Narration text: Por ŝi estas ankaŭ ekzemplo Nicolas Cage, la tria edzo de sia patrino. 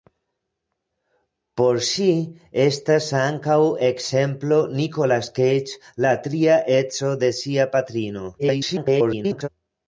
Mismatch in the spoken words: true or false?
true